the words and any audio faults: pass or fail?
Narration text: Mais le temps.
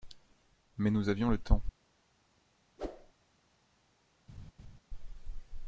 fail